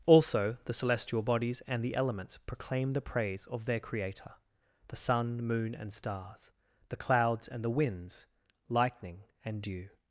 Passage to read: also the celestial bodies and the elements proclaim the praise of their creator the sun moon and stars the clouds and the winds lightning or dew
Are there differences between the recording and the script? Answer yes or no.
yes